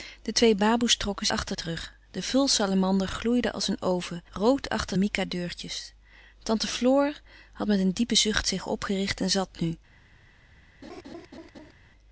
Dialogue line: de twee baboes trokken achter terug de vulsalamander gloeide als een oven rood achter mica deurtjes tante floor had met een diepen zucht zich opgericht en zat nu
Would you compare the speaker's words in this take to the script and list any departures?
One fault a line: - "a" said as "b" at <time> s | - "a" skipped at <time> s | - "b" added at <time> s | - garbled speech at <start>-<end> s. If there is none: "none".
none